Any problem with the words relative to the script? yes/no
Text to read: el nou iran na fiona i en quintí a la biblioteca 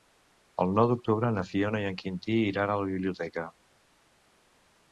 yes